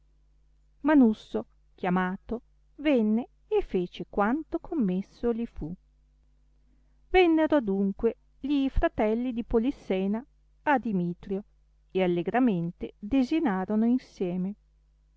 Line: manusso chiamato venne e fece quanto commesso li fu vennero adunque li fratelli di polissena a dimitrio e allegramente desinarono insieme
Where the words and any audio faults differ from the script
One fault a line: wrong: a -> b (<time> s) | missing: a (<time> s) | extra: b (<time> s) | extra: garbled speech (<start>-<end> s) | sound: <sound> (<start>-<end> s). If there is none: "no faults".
no faults